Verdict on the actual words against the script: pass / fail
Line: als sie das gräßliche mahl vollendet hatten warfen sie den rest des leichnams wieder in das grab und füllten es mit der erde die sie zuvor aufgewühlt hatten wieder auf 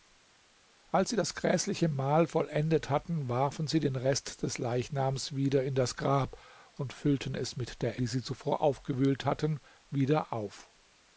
fail